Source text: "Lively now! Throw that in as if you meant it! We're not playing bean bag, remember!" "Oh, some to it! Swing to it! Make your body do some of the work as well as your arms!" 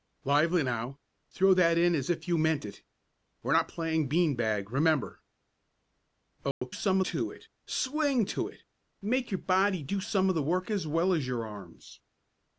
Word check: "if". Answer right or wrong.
right